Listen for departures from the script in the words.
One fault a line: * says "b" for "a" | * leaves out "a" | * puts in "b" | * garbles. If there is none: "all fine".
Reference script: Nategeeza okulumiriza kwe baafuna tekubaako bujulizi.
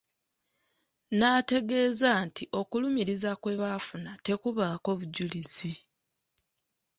* puts in "nti"